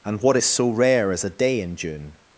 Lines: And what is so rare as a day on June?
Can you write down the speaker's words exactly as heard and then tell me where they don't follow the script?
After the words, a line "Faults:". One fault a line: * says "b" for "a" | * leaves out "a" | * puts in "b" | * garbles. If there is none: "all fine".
And what is so rare as a day in June?
Faults:
* says "in" for "on"